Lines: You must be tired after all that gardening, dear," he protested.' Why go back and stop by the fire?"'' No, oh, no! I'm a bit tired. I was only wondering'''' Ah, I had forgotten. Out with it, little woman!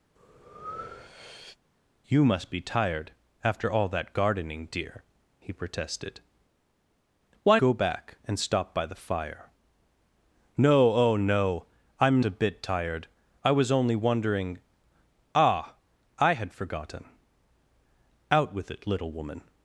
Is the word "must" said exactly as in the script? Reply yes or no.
yes